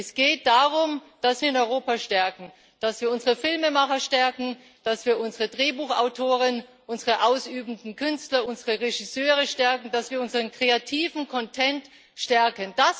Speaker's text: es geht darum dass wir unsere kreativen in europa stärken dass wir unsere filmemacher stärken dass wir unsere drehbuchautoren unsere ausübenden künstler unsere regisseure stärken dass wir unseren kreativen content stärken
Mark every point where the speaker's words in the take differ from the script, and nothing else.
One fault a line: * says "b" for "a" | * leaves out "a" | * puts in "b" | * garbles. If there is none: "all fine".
* leaves out "wir unsere kreativen"